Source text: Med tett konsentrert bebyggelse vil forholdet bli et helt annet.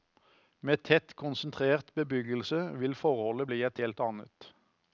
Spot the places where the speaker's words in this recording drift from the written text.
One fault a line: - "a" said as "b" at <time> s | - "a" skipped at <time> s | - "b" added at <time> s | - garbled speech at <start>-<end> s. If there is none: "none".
none